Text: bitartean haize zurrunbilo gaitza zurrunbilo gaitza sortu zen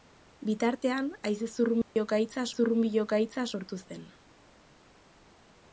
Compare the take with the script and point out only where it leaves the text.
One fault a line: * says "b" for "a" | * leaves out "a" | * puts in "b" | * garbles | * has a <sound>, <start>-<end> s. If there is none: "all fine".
* has a dropout, 1.8-2.0 s